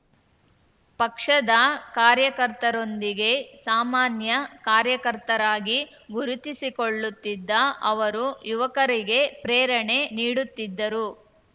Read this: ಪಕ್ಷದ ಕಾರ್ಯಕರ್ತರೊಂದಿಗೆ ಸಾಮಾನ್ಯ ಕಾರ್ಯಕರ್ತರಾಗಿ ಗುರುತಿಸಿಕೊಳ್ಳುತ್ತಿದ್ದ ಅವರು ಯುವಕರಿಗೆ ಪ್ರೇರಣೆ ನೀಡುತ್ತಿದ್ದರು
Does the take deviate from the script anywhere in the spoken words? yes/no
no